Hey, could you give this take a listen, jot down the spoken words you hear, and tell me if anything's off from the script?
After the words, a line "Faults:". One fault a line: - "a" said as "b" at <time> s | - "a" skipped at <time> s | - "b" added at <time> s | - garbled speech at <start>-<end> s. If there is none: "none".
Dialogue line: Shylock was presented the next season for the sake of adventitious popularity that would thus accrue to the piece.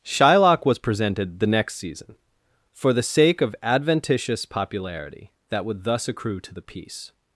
Shylock was presented the next season for the sake of adventitious popularity that would thus accrue to the piece.
Faults:
none